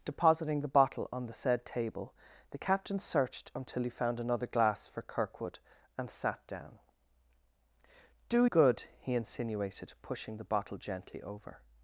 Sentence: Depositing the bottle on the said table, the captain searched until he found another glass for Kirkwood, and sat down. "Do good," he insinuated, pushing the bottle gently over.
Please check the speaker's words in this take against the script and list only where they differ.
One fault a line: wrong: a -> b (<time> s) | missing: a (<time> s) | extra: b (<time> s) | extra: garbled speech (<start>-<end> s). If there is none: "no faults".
no faults